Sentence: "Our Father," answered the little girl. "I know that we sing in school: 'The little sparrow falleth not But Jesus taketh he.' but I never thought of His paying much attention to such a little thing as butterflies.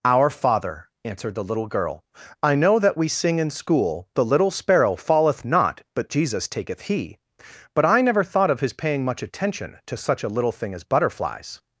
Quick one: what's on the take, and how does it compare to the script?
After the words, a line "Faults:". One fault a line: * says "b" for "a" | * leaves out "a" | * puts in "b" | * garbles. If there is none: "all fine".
"Our Father," answered the little girl. "I know that we sing in school: 'The little sparrow falleth not But Jesus taketh he.' but I never thought of His paying much attention to such a little thing as butterflies.
Faults:
all fine